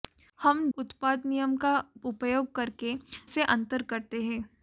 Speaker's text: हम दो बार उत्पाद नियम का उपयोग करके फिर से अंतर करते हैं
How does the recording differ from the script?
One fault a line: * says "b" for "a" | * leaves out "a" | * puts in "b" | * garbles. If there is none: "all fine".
* leaves out "दो बार"
* leaves out "फिर"